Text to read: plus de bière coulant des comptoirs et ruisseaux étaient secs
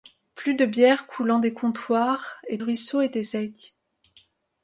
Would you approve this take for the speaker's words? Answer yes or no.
yes